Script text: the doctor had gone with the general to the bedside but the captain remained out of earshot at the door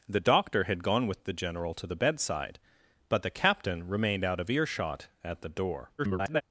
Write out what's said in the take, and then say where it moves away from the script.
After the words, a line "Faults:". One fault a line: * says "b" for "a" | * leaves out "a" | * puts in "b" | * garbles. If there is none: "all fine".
the doctor had gone with the general to the bedside but the captain remained out of earshot at the door [garbled]
Faults:
* garbles